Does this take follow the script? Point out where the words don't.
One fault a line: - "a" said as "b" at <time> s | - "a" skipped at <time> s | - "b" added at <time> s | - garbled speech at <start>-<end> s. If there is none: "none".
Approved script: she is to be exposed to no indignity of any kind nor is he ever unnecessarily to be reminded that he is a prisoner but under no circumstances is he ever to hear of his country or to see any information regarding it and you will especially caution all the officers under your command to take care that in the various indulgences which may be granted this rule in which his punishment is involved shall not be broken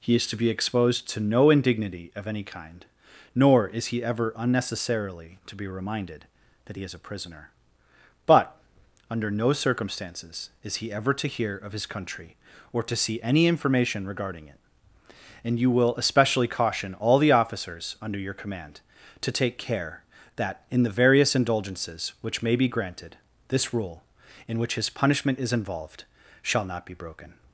- "she" said as "he" at 0.0 s